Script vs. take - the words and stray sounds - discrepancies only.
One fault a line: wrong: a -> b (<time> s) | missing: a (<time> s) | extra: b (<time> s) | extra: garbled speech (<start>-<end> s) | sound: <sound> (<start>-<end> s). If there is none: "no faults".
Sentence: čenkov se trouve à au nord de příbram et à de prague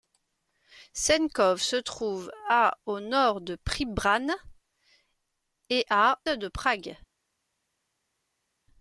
no faults